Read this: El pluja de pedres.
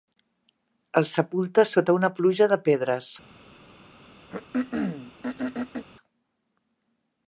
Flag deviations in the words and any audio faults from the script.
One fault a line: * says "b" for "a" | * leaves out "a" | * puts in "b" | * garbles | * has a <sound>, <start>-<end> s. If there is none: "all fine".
* puts in "sepulta sota una"
* has a throat clearing, 4.3-5.9 s